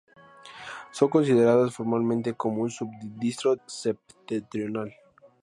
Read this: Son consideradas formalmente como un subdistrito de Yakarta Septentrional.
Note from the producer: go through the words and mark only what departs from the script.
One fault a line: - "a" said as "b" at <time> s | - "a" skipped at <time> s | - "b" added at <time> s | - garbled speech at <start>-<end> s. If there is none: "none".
- "de Yakarta" skipped at 3.5 s